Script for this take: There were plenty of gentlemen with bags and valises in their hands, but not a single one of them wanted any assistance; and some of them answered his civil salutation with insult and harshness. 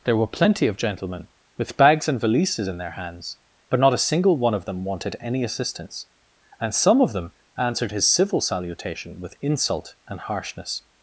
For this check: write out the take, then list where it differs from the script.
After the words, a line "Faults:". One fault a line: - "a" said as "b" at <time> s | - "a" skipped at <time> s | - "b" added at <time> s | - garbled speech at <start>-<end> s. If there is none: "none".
There were plenty of gentlemen with bags and valises in their hands, but not a single one of them wanted any assistance; and some of them answered his civil salutation with insult and harshness.
Faults:
none